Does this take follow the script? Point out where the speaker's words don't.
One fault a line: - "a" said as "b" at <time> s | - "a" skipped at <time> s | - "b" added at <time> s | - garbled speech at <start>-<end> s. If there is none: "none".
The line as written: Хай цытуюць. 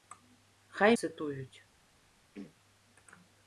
none